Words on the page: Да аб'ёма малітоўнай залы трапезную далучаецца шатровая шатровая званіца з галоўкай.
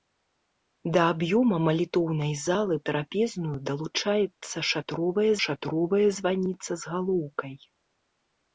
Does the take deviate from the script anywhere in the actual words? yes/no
no